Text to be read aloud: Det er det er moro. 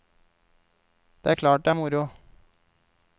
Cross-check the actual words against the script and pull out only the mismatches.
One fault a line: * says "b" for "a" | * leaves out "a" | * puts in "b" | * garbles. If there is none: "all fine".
* puts in "klart"